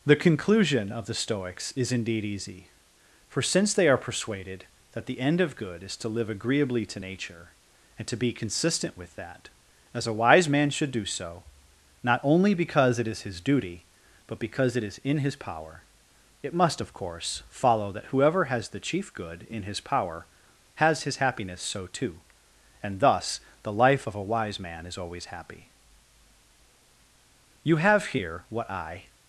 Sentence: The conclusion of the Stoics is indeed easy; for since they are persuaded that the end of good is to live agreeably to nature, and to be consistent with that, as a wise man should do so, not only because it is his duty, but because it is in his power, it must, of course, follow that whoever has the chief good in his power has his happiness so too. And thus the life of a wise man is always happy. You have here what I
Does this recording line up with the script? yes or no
yes